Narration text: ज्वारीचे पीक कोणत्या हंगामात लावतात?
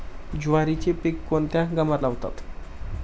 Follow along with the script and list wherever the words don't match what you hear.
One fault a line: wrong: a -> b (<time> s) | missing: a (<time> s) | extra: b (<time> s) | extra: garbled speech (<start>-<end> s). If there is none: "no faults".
no faults